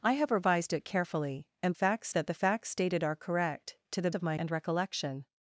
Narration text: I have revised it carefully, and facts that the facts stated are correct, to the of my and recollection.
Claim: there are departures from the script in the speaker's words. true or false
false